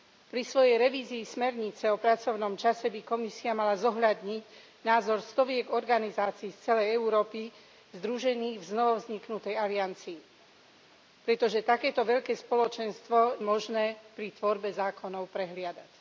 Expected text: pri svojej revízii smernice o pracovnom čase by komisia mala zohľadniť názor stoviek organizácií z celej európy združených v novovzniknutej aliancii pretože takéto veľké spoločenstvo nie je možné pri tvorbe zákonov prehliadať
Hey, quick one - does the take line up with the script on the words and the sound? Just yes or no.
no